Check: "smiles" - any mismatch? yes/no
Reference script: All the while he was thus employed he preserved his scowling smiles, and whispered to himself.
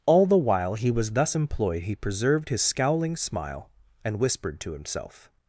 yes